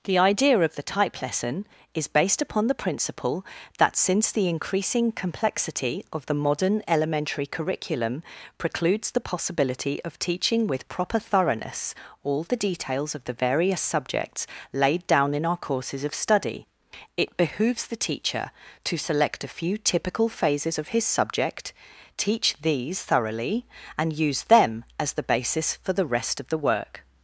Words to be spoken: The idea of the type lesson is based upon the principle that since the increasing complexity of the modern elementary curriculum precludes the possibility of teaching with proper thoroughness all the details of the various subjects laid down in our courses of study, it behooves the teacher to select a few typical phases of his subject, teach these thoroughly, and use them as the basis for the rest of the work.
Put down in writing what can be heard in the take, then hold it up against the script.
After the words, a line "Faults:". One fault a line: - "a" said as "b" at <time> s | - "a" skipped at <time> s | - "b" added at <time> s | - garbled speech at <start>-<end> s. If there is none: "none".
The idea of the type lesson is based upon the principle that since the increasing complexity of the modern elementary curriculum precludes the possibility of teaching with proper thoroughness all the details of the various subjects laid down in our courses of study, it behooves the teacher to select a few typical phases of his subject, teach these thoroughly, and use them as the basis for the rest of the work.
Faults:
none